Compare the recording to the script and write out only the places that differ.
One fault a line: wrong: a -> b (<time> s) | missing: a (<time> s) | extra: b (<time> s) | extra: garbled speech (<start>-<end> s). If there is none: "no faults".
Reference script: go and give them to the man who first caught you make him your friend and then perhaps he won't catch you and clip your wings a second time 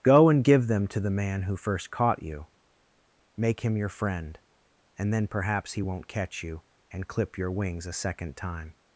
no faults